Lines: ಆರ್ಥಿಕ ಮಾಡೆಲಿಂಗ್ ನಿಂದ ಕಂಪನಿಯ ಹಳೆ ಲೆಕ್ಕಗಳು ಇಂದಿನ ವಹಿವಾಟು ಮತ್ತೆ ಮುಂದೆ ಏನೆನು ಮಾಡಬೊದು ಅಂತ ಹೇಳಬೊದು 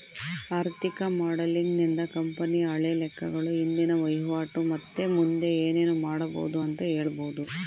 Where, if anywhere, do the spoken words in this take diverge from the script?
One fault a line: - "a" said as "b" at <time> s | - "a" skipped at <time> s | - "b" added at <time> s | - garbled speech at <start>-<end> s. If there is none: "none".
none